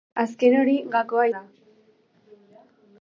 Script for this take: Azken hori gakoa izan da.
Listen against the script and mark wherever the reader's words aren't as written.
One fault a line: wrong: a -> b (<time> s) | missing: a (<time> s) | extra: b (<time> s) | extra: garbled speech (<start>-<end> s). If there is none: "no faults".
missing: izan (1.2 s)